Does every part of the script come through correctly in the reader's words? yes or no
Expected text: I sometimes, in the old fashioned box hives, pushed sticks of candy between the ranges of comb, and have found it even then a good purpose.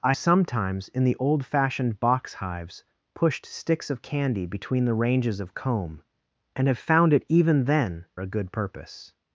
yes